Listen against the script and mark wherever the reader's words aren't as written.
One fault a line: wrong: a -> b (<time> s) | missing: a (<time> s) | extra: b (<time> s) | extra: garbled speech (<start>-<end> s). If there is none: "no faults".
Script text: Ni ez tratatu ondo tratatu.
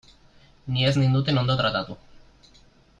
wrong: tratatu -> ninduten (1.0 s)